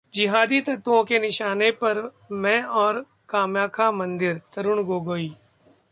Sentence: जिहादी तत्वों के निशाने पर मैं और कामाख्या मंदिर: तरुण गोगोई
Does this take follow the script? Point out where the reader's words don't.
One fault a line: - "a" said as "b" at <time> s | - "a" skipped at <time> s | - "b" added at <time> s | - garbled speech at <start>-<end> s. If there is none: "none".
none